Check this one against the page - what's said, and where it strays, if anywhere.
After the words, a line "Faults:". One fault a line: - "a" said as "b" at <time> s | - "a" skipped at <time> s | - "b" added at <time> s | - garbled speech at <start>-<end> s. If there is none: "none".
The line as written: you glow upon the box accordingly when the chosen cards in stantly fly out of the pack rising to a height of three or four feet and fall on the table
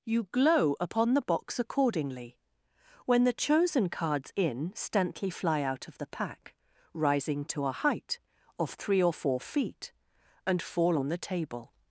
you glow upon the box accordingly when the chosen cards in stantly fly out of the pack rising to a height of three or four feet and fall on the table
Faults:
none